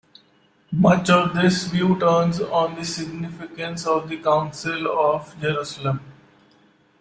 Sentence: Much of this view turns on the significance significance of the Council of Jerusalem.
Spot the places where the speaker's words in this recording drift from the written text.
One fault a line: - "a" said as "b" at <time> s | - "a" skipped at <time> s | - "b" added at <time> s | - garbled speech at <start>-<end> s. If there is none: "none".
- "significance" skipped at 3.8 s